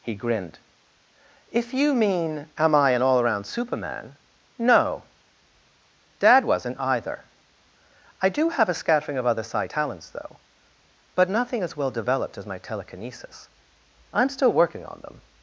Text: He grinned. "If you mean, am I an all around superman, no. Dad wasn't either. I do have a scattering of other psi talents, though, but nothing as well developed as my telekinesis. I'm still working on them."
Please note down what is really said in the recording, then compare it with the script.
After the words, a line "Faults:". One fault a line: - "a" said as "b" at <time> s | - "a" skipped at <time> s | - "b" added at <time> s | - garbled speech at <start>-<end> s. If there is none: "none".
He grinned. "If you mean, am I an all around superman, no. Dad wasn't either. I do have a scattering of other psi talents, though, but nothing as well developed as my telekinesis. I'm still working on them."
Faults:
none